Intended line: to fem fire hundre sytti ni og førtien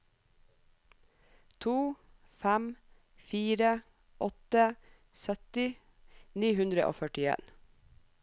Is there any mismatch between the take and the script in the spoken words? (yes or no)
yes